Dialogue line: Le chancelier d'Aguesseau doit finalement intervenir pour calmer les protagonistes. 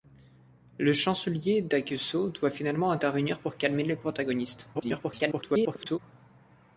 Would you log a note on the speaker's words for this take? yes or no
yes